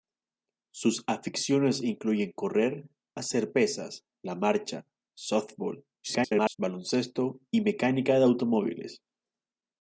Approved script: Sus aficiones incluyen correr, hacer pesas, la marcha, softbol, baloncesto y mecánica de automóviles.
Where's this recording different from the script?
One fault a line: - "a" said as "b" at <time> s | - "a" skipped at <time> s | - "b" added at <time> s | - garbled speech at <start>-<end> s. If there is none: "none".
- garbled speech at 6.0-6.6 s